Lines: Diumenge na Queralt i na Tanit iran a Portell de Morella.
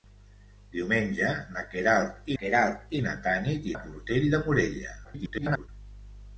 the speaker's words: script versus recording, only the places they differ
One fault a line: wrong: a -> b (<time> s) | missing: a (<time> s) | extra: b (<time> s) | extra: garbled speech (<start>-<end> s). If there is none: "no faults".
extra: Queralt (2.4 s)
missing: iran (3.7 s)
extra: garbled speech (5.0-5.7 s)